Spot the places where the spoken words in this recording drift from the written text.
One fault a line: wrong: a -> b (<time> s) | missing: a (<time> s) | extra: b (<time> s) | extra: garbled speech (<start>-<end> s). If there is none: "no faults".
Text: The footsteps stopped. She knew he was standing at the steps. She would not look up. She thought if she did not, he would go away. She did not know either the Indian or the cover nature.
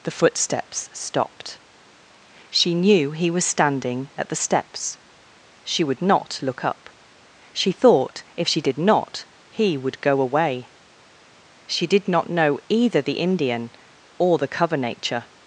no faults